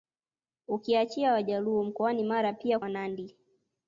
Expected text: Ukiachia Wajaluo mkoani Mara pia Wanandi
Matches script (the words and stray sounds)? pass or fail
pass